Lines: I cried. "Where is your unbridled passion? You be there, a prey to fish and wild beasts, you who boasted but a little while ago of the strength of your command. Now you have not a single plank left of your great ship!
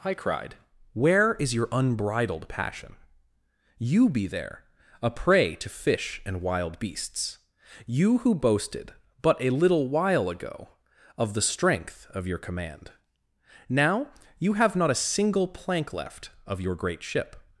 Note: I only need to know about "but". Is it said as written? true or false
true